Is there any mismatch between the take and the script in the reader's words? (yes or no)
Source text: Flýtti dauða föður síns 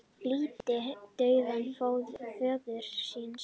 no